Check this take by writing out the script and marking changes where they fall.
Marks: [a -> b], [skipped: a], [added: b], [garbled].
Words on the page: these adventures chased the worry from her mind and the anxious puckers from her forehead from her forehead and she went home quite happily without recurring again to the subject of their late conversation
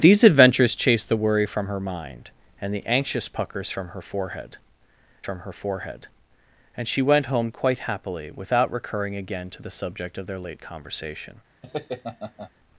these adventures chased the worry from her mind and the anxious puckers from her forehead from her forehead and she went home quite happily without recurring again to the subject of their late conversation